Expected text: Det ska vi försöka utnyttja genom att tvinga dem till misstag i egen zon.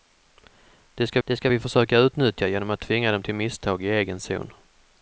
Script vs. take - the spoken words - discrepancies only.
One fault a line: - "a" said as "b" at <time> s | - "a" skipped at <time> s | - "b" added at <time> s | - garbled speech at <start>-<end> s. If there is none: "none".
- "det ska" added at 1.2 s